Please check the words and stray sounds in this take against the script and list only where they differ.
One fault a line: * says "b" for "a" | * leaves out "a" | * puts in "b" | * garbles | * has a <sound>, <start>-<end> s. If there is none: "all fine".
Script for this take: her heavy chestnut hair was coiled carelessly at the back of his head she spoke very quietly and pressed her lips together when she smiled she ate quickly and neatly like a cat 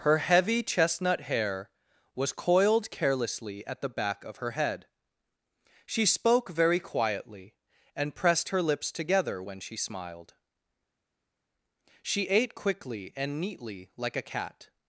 * says "her" for "his"